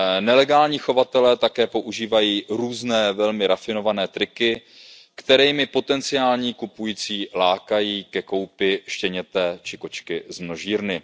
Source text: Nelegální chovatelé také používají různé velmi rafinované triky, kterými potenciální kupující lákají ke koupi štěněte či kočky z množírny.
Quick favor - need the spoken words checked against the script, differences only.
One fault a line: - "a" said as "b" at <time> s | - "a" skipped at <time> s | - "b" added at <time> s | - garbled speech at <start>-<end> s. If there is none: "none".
none